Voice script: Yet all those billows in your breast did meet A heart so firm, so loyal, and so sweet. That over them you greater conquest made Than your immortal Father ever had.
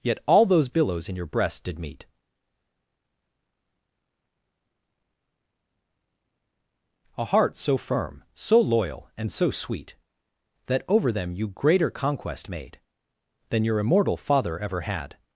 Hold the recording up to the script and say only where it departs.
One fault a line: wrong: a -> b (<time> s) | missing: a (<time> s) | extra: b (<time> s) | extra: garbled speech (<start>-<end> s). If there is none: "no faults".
no faults